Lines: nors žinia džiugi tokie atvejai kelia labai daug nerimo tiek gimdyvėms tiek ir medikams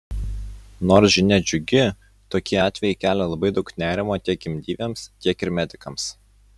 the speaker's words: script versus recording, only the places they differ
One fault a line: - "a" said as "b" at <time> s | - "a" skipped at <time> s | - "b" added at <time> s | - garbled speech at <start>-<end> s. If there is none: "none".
none